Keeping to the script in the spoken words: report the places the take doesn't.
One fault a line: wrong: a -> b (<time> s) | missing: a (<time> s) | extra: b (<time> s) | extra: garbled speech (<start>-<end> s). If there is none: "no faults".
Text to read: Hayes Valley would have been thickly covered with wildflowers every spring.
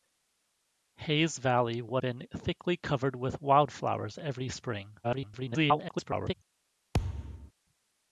missing: have (2.0 s)
extra: garbled speech (5.0-6.3 s)